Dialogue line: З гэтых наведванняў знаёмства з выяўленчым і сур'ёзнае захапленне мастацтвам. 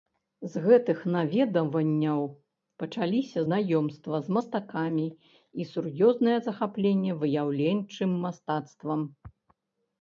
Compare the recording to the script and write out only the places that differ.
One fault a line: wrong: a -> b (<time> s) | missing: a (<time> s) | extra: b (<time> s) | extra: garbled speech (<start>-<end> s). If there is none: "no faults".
extra: пачаліся (2.8 s)
wrong: выяўленчым -> мастакамі (4.4 s)
extra: выяўленчым (7.2 s)